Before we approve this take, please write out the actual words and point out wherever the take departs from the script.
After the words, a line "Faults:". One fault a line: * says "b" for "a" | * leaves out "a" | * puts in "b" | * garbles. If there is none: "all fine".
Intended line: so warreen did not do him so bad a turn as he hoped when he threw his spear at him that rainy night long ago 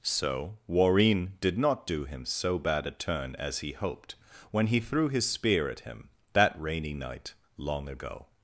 so warreen did not do him so bad a turn as he hoped when he threw his spear at him that rainy night long ago
Faults:
all fine